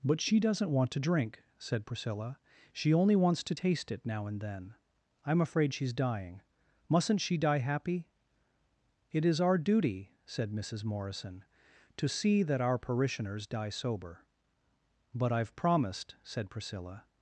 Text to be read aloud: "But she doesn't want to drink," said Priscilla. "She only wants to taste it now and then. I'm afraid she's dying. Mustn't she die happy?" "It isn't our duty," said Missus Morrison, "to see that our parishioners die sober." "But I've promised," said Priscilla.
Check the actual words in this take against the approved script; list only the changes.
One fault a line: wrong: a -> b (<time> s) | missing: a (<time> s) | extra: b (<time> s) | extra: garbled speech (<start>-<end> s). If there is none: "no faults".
wrong: isn't -> is (9.3 s)